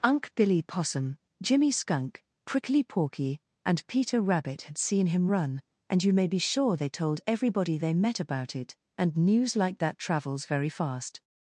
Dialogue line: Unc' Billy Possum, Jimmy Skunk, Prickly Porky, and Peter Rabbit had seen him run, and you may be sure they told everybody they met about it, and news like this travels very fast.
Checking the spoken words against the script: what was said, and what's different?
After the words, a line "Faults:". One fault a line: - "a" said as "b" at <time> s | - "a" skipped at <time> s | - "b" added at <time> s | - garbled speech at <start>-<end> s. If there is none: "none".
Unc' Billy Possum, Jimmy Skunk, Prickly Porky, and Peter Rabbit had seen him run, and you may be sure they told everybody they met about it, and news like that travels very fast.
Faults:
- "this" said as "that" at 9.8 s